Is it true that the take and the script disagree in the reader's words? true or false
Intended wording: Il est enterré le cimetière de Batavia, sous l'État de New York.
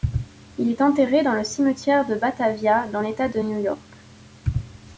true